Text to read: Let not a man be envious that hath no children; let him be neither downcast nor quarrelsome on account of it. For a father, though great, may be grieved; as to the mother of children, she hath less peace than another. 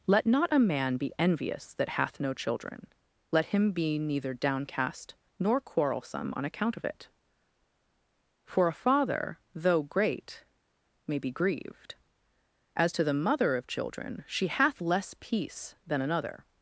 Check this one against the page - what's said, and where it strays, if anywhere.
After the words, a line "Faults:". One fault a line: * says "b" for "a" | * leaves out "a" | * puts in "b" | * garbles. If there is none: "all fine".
Let not a man be envious that hath no children; let him be neither downcast nor quarrelsome on account of it. For a father, though great, may be grieved; as to the mother of children, she hath less peace than another.
Faults:
all fine